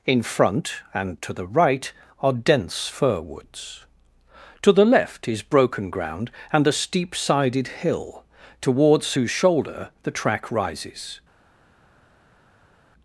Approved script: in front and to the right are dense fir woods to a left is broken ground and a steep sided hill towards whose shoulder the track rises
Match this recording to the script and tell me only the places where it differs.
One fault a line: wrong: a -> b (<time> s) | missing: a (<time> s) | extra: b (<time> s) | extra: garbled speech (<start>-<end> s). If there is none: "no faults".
wrong: a -> the (4.7 s)